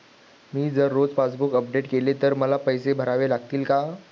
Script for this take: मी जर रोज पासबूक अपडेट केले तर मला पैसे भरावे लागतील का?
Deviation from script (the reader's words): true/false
false